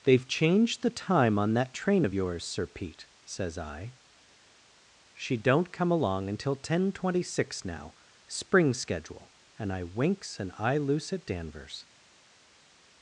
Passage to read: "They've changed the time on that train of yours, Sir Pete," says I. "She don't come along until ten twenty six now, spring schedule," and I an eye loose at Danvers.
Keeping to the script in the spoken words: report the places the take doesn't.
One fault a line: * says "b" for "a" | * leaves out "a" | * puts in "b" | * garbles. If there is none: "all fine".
* puts in "winks"